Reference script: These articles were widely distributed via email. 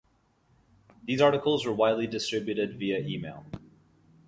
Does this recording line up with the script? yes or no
yes